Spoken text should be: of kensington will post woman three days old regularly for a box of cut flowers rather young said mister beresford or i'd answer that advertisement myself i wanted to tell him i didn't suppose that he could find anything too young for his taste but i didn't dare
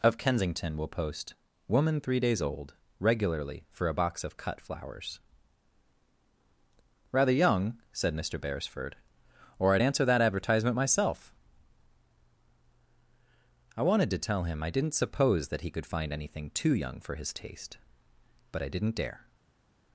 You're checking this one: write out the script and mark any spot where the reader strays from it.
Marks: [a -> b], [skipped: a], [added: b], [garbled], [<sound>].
of kensington will post woman three days old regularly for a box of cut flowers rather young said mister beresford or i'd answer that advertisement myself i wanted to tell him i didn't suppose that he could find anything too young for his taste but i didn't dare